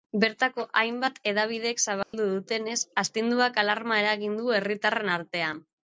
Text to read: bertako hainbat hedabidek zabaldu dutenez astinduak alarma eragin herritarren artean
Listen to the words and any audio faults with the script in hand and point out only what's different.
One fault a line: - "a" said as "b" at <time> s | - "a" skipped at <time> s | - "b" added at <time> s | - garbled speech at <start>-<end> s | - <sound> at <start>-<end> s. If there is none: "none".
- dropout at 2.0-2.1 s
- "du" added at 4.4 s